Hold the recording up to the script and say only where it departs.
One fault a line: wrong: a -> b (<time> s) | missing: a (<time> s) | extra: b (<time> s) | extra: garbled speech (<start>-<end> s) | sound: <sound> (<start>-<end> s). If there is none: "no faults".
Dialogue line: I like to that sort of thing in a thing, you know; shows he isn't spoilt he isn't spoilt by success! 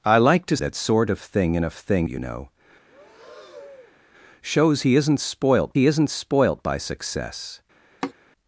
sound: breath (2.9-4.0 s)
sound: sigh (8.0-8.1 s)